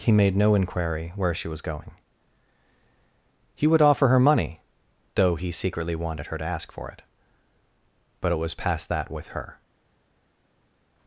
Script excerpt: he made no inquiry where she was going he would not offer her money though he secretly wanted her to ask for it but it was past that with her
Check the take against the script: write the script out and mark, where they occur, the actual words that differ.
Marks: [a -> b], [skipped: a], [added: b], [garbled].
he made no inquiry where she was going he would [skipped: not] offer her money though he secretly wanted her to ask for it but it was past that with her